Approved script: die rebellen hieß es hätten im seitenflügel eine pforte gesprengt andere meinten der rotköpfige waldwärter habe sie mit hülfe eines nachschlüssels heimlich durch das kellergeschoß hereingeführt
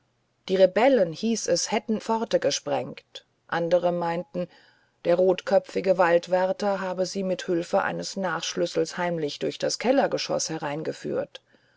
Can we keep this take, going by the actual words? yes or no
no